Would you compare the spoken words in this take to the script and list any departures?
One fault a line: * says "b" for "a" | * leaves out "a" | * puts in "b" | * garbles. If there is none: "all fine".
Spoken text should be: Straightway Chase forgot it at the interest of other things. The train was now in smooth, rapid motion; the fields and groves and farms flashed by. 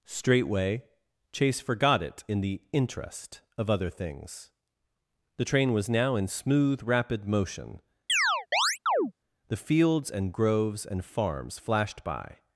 * says "in" for "at"